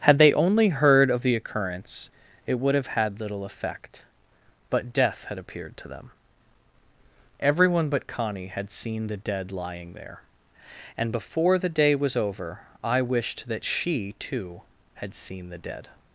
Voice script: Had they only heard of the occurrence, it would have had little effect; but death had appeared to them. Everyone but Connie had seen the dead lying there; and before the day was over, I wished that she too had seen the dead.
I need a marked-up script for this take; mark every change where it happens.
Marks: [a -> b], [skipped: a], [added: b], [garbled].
Had they only heard of the occurrence, it would have had little effect; but death had appeared to them. Everyone but Connie had seen the dead lying there; and before the day was over, I wished that she too had seen the dead.